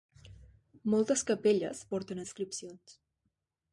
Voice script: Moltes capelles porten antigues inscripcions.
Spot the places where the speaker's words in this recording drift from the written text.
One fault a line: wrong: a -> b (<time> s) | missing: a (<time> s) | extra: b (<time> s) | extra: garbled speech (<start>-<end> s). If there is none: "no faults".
missing: antigues (2.2 s)